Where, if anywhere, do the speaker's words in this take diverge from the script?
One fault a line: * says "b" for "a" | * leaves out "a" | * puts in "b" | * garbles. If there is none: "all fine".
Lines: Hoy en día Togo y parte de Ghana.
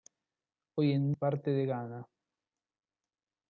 * leaves out "día Togo y"